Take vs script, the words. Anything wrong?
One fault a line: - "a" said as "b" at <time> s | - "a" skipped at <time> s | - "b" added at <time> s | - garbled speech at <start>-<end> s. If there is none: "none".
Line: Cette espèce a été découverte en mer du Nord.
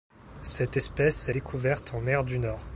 - "été" skipped at 1.3 s